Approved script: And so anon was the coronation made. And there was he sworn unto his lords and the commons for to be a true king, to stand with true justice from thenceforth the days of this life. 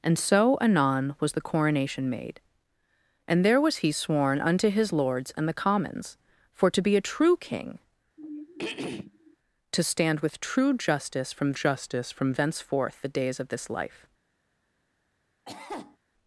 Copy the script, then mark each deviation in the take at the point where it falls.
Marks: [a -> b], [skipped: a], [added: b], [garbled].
And so anon was the coronation made. And there was he sworn unto his lords and the commons for to be a true king, to stand with true justice from [added: justice from] thenceforth the days of this life.